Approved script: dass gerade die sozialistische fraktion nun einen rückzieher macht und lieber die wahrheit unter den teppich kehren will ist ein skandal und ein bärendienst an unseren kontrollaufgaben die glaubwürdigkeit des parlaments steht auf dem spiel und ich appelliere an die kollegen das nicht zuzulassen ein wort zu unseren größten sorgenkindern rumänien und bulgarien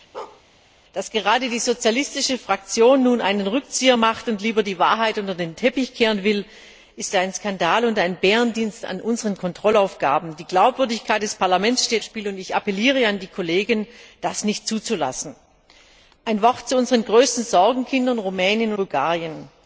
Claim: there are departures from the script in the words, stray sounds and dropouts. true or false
true